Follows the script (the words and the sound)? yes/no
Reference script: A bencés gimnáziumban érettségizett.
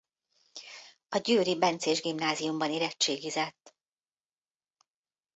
no